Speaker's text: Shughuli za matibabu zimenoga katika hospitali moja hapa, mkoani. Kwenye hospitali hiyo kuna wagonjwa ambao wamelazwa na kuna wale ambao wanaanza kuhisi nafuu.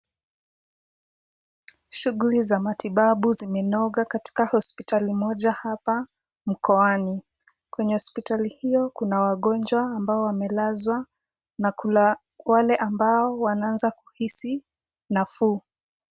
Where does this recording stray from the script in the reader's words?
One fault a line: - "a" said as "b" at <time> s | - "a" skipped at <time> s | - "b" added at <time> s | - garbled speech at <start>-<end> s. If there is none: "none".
none